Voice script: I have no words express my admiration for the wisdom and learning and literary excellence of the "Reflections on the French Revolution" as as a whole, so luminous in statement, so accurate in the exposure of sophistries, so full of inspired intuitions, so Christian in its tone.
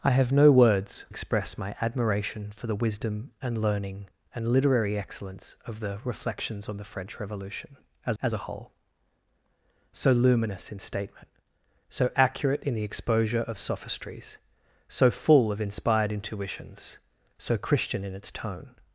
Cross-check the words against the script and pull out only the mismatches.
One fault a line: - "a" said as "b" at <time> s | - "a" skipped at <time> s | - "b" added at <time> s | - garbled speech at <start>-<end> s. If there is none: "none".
none